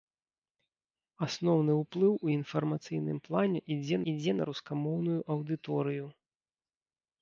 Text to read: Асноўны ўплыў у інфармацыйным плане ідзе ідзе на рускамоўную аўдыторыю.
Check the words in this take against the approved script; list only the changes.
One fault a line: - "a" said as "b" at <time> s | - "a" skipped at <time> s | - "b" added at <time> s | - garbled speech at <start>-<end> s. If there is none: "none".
none